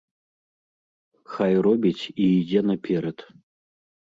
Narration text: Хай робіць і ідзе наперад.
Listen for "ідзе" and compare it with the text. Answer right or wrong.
right